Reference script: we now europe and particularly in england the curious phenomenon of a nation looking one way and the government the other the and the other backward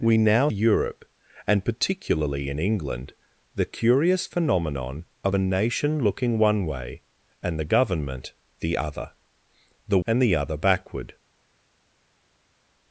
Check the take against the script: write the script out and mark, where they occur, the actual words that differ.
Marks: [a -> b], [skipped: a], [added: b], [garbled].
we now europe and particularly in england the curious phenomenon of a nation looking one way and the government the other the and the other backward